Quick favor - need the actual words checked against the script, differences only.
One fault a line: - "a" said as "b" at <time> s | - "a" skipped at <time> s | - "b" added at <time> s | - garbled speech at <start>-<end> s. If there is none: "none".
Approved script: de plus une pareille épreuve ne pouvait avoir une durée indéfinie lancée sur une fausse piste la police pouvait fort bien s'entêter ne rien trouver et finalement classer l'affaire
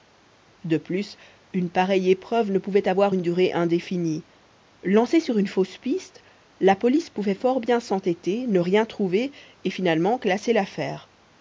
none